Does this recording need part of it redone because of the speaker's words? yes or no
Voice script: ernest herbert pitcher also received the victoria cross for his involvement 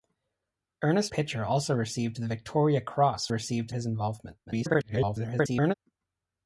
yes